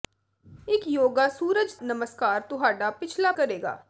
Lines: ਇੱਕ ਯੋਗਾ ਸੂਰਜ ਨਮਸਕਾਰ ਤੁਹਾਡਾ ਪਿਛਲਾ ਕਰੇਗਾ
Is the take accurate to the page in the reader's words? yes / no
yes